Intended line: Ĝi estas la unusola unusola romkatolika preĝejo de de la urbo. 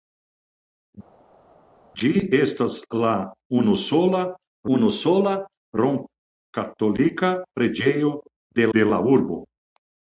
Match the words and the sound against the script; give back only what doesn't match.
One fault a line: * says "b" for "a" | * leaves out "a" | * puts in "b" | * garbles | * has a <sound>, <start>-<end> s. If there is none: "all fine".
all fine